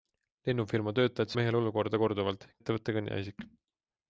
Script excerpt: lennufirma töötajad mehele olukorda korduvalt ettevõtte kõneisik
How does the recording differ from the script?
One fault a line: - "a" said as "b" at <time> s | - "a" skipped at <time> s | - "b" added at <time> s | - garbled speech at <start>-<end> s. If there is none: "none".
none